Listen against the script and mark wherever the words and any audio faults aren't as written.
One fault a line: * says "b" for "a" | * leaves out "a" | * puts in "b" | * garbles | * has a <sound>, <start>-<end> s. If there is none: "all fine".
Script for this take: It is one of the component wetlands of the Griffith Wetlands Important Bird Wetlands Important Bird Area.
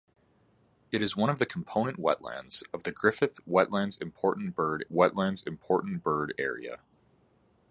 all fine